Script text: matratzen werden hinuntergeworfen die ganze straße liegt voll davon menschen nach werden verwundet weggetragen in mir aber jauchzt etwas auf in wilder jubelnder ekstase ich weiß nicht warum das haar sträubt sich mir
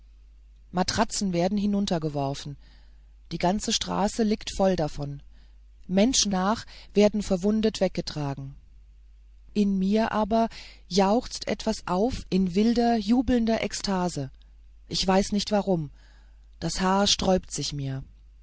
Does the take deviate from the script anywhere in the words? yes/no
no